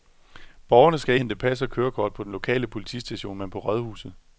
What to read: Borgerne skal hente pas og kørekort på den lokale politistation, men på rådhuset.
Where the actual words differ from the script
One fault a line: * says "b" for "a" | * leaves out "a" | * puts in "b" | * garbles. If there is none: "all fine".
all fine